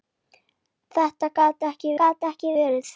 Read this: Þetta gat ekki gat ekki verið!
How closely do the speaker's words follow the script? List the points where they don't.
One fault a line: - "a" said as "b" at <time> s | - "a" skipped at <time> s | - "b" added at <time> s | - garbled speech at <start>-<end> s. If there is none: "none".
none